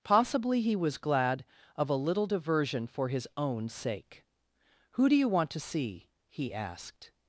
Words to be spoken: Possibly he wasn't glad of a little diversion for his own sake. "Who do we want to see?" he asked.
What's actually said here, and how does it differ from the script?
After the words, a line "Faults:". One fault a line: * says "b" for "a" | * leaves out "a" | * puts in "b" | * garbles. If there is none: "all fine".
Possibly he was glad of a little diversion for his own sake. "Who do you want to see?" he asked.
Faults:
* says "was" for "wasn't"
* says "you" for "we"